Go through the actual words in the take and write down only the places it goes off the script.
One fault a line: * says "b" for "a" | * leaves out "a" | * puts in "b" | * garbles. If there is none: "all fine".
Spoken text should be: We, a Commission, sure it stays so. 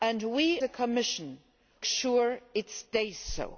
all fine